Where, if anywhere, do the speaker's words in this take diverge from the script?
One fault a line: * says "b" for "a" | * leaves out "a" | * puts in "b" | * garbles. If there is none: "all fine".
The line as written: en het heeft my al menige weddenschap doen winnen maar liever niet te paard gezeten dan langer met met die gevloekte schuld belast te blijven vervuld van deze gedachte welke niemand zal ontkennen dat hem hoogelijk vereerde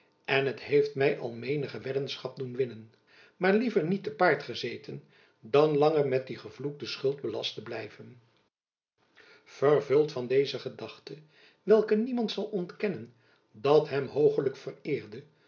* leaves out "met"